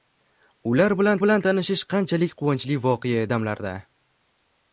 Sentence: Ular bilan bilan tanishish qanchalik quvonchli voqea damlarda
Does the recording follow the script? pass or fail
pass